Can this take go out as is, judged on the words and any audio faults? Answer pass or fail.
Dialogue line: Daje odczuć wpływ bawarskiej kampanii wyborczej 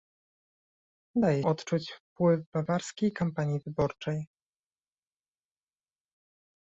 pass